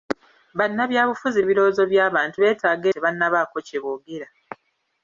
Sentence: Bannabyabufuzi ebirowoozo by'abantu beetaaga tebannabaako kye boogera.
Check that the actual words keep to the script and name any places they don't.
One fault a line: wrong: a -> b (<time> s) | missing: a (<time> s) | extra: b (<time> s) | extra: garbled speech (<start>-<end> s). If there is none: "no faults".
no faults